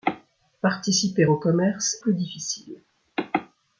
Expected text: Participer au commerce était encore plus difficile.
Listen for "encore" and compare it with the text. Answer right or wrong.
wrong